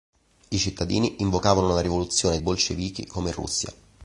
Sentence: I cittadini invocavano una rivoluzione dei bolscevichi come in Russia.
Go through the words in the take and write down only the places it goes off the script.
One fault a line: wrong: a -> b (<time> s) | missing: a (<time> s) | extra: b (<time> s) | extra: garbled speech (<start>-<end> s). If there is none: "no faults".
missing: dei (2.4 s)